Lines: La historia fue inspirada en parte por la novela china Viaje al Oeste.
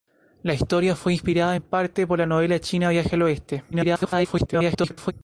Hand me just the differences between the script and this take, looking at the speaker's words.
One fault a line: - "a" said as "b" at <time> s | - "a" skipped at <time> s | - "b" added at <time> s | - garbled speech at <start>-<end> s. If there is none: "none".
- garbled speech at 3.7-5.1 s